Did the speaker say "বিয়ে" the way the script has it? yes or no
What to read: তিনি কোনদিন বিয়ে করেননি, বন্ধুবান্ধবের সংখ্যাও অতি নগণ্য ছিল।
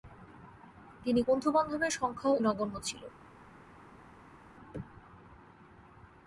no